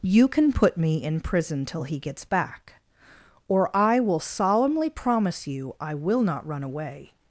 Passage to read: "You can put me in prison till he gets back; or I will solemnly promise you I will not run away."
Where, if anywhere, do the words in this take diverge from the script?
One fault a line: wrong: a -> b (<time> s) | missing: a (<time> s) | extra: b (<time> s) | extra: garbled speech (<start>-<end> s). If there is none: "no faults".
no faults